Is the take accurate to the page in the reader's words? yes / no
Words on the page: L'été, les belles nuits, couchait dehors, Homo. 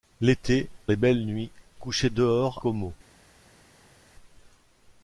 yes